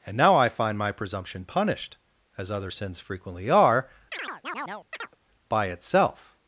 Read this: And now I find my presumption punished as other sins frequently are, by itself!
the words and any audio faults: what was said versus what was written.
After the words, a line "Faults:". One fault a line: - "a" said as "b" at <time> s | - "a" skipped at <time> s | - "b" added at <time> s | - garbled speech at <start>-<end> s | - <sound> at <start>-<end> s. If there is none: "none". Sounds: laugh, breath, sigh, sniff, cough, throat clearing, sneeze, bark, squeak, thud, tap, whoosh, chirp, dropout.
And now I find my presumption punished as other sins frequently are, by itself!
Faults:
- chirp at 4.1-5.2 s